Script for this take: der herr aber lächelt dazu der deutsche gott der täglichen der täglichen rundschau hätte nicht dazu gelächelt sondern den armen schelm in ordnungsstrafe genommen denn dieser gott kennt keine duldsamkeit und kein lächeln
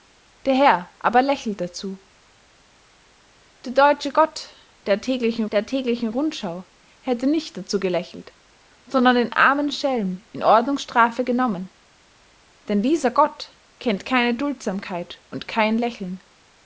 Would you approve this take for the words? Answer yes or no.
yes